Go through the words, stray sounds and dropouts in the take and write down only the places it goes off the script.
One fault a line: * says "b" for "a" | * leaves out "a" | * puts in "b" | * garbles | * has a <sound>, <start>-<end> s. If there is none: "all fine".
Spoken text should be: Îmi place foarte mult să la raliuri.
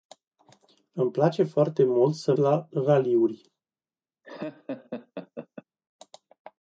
* has a laugh, 4.2-5.6 s